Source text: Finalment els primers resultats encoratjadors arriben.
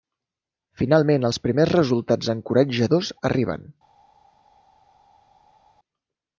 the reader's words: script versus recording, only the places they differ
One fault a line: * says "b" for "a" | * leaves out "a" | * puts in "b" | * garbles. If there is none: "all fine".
all fine